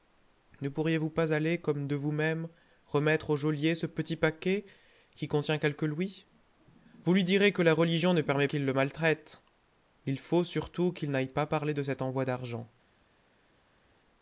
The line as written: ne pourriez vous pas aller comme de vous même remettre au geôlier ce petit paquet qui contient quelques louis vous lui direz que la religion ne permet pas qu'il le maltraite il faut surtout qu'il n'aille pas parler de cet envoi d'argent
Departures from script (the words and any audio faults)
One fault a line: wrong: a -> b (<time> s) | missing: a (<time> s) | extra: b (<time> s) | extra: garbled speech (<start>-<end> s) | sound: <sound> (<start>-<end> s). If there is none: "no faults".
missing: pas (8.5 s)